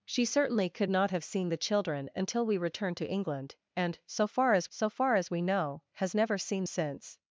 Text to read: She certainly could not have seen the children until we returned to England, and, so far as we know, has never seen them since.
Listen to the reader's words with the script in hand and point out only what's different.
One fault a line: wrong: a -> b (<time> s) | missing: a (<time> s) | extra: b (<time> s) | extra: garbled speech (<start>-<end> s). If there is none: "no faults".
extra: so far as (4.7 s)
missing: them (6.6 s)